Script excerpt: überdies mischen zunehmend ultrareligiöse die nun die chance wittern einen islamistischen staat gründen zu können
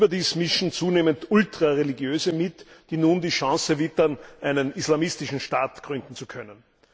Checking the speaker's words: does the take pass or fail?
fail